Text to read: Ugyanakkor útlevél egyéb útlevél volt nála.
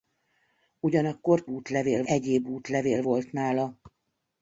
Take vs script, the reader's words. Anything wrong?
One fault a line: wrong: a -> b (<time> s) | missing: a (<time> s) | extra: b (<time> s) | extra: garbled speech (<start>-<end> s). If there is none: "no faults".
no faults